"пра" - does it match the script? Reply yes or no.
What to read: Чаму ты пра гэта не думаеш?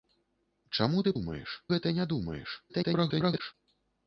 no